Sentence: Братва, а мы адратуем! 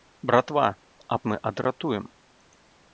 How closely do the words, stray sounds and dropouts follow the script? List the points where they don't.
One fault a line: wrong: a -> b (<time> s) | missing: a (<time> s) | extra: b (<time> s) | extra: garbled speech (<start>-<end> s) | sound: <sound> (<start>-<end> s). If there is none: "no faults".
no faults